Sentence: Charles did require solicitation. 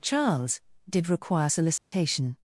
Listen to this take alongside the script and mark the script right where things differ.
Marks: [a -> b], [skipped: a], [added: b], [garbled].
Charles did require solicitation.